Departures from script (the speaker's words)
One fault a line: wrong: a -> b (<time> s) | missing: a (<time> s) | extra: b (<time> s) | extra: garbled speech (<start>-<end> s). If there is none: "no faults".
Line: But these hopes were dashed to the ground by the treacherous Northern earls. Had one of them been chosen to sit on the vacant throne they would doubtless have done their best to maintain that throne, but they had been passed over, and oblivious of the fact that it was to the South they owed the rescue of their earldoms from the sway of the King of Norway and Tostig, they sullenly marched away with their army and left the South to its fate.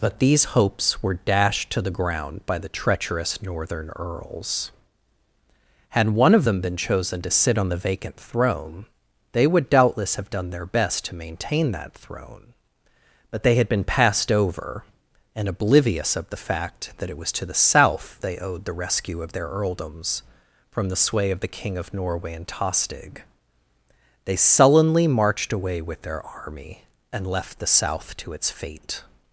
no faults